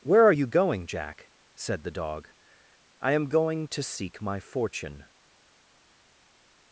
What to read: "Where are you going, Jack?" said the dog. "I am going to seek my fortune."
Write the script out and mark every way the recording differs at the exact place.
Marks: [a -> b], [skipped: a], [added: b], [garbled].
"Where are you going, Jack?" said the dog. "I am going to seek my fortune."